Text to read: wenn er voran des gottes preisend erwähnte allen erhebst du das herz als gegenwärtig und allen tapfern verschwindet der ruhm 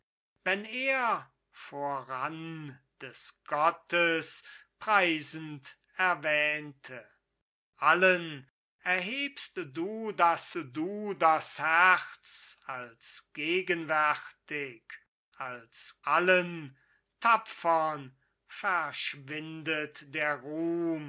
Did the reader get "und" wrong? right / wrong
wrong